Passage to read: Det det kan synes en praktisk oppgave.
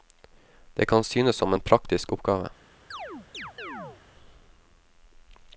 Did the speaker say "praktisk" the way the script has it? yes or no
yes